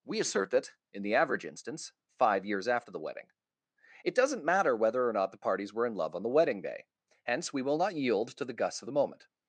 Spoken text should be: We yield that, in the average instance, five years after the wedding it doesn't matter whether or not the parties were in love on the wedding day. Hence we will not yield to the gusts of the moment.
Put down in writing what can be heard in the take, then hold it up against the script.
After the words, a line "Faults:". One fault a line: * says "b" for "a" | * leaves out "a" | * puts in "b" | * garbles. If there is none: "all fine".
We assert that, in the average instance, five years after the wedding it doesn't matter whether or not the parties were in love on the wedding day. Hence we will not yield to the gusts of the moment.
Faults:
* says "assert" for "yield"